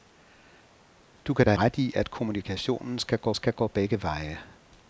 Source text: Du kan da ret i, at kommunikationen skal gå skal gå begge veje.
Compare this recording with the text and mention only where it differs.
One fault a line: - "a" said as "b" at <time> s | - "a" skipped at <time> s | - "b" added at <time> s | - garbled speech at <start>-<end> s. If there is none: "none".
none